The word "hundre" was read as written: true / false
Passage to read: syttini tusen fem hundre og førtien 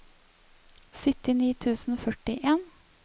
false